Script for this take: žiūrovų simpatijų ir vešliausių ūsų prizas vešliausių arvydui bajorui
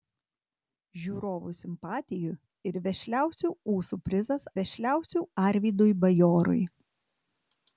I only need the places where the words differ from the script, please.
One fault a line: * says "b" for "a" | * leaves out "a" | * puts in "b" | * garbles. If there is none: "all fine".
all fine